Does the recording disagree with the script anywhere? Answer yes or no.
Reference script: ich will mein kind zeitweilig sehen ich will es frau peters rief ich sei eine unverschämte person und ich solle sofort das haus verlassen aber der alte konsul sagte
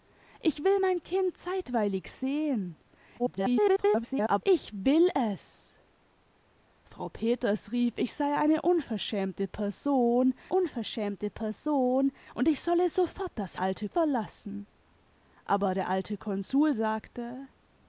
yes